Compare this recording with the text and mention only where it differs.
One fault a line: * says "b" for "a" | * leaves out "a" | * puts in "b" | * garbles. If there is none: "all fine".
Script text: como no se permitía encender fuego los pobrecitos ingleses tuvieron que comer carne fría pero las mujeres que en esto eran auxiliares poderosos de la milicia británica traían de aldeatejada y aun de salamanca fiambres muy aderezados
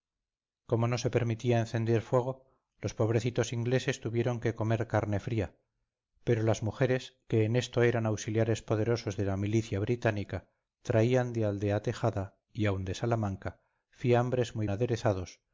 all fine